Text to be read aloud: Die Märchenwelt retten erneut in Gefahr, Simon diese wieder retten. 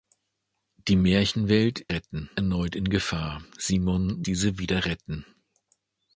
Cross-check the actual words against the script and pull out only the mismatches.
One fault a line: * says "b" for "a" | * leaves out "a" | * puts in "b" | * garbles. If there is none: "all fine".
all fine